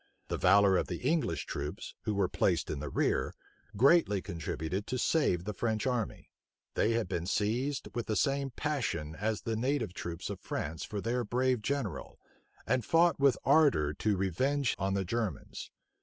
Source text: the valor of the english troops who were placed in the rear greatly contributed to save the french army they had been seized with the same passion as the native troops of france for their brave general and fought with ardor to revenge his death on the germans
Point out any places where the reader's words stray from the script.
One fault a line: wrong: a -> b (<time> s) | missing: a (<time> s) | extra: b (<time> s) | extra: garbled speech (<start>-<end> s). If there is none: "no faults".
missing: his death (14.7 s)